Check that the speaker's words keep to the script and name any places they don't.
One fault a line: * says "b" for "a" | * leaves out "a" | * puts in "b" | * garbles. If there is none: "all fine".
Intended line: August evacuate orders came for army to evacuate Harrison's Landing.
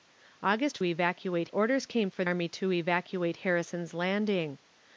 all fine